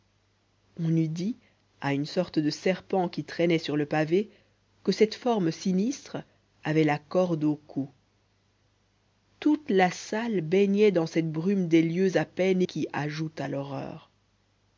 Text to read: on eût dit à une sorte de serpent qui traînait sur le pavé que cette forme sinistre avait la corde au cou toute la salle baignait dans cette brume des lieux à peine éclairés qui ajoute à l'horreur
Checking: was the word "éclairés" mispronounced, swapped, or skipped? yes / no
yes